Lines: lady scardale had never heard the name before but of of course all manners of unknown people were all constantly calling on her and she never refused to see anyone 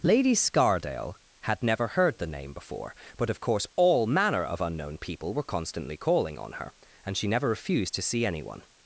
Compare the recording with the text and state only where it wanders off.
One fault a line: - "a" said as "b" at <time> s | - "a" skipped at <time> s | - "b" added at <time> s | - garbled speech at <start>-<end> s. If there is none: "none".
- "of" skipped at 3.4 s
- "manners" said as "manner" at 4.1 s
- "all" skipped at 5.4 s